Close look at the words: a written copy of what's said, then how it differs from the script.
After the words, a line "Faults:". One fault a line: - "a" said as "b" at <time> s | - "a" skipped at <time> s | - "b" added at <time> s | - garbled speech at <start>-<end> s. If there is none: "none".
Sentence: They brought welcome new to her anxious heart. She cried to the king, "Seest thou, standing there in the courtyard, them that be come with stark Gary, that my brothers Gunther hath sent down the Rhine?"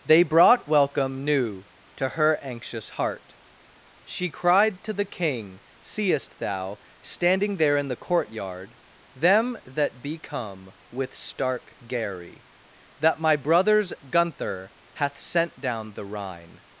They brought welcome new to her anxious heart. She cried to the king, "Seest thou, standing there in the courtyard, them that be come with stark Gary, that my brothers Gunther hath sent down the Rhine?"
Faults:
none